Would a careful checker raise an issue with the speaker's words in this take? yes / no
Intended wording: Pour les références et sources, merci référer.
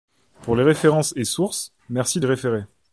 no